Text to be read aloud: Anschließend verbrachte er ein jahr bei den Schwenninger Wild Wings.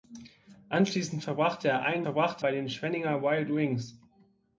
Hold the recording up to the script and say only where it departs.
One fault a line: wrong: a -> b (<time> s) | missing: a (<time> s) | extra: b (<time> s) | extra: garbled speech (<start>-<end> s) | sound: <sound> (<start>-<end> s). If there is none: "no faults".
wrong: jahr -> verbrachte (2.0 s)